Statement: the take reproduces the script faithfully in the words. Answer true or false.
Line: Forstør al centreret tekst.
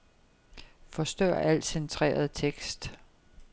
true